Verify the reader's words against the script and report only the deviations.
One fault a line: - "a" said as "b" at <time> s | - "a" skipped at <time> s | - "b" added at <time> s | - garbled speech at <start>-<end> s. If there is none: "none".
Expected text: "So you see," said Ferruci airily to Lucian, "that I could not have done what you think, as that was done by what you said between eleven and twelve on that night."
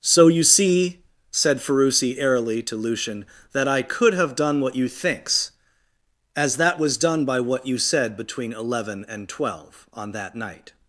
- "not" skipped at 4.1 s
- "think" said as "thinks" at 4.9 s